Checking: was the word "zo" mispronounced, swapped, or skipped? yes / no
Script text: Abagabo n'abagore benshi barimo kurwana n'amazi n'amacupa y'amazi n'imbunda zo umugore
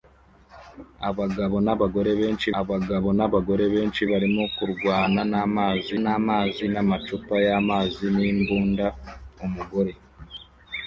yes